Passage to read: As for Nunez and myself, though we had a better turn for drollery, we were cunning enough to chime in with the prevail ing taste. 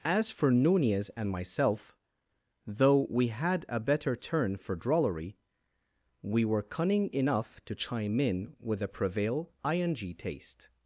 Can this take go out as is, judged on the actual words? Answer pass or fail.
fail